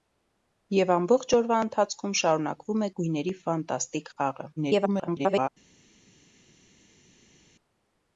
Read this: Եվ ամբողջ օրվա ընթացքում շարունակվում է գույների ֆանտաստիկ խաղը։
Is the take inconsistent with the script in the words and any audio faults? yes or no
yes